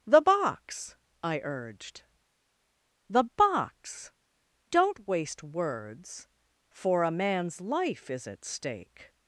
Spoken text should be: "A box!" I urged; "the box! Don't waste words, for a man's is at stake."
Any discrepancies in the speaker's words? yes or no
yes